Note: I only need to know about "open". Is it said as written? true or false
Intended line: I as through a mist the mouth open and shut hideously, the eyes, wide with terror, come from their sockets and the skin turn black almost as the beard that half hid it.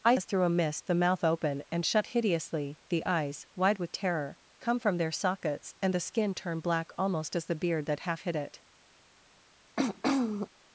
true